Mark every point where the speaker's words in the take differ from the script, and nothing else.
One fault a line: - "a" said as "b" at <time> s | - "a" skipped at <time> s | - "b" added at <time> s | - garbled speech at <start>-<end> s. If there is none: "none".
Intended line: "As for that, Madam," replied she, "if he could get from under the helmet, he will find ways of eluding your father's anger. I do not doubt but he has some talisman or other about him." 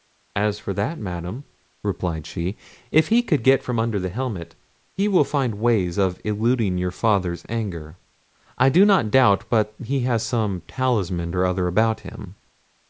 none